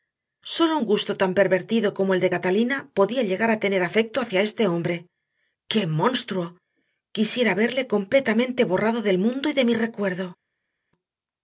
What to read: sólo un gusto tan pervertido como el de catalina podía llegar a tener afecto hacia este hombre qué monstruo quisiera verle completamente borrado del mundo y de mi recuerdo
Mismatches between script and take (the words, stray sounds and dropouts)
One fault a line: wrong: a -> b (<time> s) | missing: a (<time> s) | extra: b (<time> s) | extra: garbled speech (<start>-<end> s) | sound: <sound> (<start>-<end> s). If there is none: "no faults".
no faults